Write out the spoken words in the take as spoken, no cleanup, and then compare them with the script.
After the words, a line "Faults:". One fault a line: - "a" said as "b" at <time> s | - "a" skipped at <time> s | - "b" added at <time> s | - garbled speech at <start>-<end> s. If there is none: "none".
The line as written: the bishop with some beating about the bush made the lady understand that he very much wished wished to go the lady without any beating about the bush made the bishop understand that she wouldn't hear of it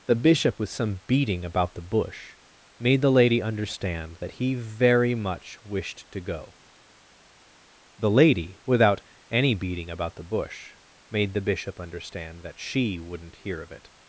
the bishop with some beating about the bush made the lady understand that he very much wished to go the lady without any beating about the bush made the bishop understand that she wouldn't hear of it
Faults:
- "wished" skipped at 6.1 s